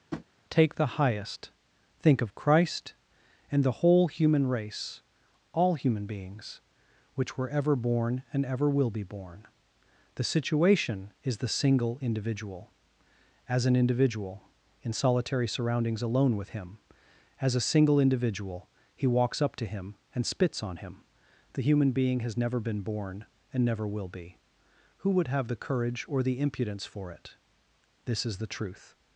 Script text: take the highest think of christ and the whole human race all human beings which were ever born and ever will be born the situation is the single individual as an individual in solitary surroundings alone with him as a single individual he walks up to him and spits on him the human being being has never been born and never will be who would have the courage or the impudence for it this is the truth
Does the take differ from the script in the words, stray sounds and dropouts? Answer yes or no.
yes